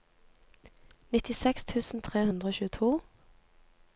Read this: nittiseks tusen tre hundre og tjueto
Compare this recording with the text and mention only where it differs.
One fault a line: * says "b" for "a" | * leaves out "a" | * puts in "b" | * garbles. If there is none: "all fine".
all fine